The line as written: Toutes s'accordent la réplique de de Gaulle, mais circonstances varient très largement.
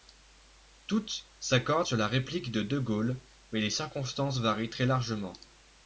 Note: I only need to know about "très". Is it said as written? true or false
true